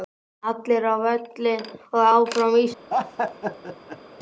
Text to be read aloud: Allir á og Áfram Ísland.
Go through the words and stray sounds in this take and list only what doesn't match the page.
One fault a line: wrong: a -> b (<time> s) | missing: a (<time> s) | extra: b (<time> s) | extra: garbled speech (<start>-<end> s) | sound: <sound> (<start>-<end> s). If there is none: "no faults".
extra: völlinn (1.1 s)
sound: laugh (2.9-4.0 s)